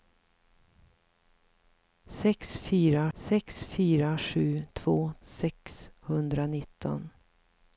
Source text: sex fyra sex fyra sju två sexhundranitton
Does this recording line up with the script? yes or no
yes